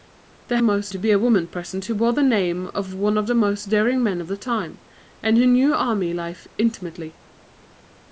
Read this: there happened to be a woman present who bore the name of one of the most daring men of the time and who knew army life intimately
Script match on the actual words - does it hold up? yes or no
no